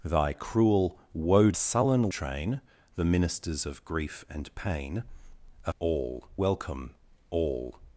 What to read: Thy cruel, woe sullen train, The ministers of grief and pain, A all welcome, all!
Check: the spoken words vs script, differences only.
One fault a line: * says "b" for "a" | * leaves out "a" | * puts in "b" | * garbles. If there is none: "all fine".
all fine